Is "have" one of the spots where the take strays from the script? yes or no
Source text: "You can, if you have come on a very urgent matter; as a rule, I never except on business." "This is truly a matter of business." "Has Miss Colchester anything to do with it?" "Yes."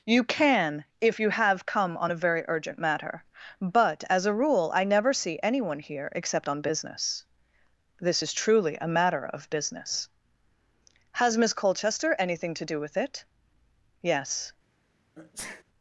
no